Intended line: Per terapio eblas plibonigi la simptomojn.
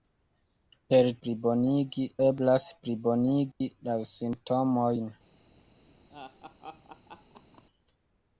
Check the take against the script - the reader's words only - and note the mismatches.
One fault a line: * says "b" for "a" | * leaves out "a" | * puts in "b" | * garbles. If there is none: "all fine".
* says "plibonigi" for "terapio"